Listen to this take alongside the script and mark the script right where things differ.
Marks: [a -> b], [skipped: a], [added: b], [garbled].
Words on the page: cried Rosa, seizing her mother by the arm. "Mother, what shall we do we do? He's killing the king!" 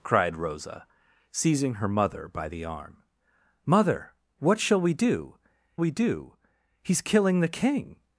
cried Rosa, seizing her mother by the arm. "Mother, what shall we do we do? He's killing the king!"